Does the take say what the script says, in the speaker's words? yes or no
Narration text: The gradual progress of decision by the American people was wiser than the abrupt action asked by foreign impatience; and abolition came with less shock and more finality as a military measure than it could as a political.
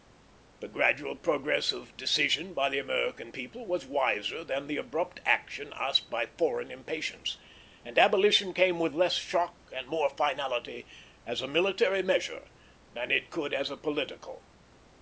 yes